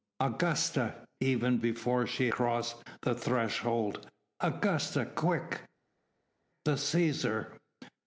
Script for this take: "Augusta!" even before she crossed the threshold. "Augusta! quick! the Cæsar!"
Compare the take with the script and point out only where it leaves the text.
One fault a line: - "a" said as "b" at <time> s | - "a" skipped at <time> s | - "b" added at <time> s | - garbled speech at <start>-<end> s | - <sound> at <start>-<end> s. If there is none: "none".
none